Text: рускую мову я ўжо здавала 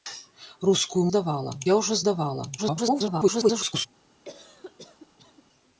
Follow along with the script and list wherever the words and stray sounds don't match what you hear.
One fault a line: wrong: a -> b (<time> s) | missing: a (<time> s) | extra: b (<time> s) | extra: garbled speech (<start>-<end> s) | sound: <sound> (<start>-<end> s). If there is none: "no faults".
wrong: мову -> здавала (1.1 s)
extra: garbled speech (2.6-3.9 s)
sound: cough (4.2-5.4 s)